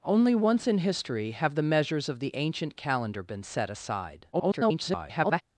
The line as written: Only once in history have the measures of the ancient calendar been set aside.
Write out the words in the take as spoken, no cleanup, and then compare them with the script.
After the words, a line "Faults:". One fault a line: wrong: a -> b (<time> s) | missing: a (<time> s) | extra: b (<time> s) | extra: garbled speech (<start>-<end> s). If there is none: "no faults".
Only once in history have the measures of the ancient calendar been set aside. [garbled]
Faults:
extra: garbled speech (4.3-5.4 s)